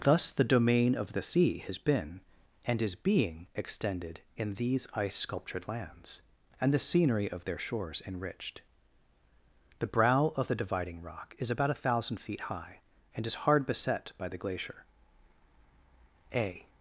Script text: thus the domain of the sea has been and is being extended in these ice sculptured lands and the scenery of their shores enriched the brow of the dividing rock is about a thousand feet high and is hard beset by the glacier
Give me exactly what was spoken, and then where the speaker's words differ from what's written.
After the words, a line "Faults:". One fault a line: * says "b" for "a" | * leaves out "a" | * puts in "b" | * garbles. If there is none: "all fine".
thus the domain of the sea has been and is being extended in these ice sculptured lands and the scenery of their shores enriched the brow of the dividing rock is about a thousand feet high and is hard beset by the glacier a
Faults:
* puts in "a"